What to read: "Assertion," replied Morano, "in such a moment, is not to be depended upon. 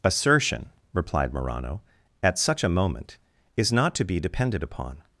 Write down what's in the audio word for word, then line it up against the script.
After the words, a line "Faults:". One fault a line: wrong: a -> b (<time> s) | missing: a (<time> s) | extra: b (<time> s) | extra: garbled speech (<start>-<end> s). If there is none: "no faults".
"Assertion," replied Morano, "at such a moment, is not to be depended upon.
Faults:
wrong: in -> at (2.2 s)